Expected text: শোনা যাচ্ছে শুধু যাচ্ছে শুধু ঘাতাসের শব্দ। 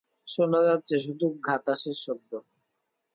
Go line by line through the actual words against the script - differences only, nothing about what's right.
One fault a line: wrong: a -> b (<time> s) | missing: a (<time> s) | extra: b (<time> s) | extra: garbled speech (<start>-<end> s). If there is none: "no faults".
missing: যাচ্ছে শুধু (1.3 s)